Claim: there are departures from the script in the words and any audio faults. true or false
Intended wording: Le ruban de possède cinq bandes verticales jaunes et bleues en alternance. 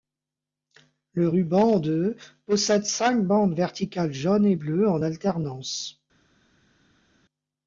false